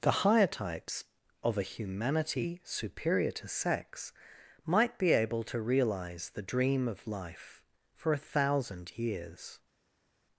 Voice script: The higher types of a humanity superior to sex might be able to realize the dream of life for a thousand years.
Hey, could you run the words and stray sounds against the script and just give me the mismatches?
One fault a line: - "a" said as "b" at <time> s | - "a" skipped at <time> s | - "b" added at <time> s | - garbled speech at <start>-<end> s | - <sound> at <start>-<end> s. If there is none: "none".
none